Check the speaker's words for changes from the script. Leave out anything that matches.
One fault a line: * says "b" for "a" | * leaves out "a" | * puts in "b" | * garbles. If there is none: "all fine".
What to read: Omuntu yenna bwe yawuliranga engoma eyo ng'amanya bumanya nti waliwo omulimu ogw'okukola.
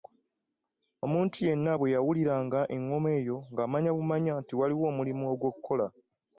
all fine